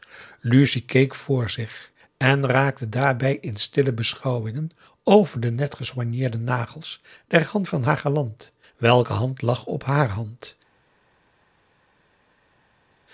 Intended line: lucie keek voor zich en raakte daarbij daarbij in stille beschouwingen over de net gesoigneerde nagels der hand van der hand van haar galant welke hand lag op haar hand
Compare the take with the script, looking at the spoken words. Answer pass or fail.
fail